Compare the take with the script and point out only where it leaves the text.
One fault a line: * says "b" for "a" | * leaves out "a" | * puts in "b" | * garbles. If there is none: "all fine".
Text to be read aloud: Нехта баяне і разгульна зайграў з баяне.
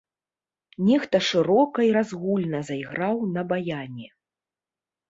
* says "шырока" for "баяне"
* says "на" for "з"